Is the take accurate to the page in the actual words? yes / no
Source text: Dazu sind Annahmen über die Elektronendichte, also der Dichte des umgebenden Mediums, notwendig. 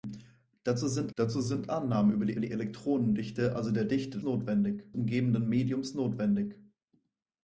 no